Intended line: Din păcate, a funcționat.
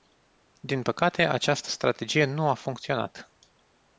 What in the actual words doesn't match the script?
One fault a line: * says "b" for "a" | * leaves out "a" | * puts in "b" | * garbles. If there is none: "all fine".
* puts in "această strategie nu"